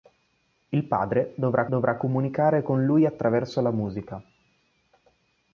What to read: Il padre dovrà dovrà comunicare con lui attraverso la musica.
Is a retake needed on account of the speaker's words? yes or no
no